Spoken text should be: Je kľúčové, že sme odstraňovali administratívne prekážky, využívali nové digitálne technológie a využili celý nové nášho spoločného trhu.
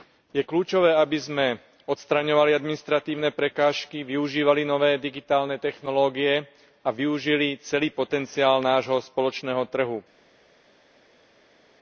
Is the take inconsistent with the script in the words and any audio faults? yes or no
yes